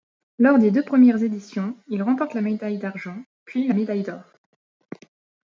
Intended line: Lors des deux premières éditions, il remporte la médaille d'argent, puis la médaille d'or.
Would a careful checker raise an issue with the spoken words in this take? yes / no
no